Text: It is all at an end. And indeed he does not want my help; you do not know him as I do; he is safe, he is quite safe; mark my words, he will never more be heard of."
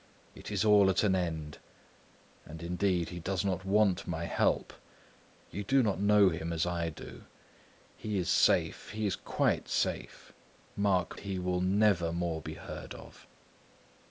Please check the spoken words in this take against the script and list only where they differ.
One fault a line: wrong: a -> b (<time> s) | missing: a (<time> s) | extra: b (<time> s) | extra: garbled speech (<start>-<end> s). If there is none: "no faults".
missing: my words (11.2 s)